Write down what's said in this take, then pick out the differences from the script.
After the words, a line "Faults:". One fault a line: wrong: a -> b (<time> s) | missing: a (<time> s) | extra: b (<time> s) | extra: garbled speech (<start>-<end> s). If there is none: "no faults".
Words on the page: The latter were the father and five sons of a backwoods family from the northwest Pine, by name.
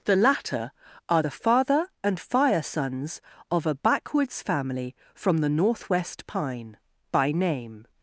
The latter are the father and fire sons of a backwoods family from the northwest Pine, by name.
Faults:
wrong: were -> are (1.1 s)
wrong: five -> fire (2.2 s)